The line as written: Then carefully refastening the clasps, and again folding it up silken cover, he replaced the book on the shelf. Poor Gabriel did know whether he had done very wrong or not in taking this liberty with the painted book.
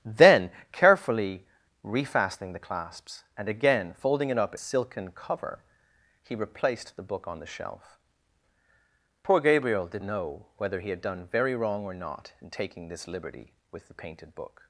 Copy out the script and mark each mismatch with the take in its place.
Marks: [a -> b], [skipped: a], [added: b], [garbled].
Then carefully refastening the clasps, and again folding it up silken cover, he replaced the book on the shelf. Poor Gabriel did know whether he had done very wrong or not in taking this liberty with the painted book.